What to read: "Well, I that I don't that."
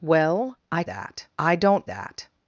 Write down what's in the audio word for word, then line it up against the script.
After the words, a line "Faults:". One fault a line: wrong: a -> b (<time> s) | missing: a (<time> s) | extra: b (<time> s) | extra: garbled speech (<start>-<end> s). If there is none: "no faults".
"Well, I that I don't that."
Faults:
no faults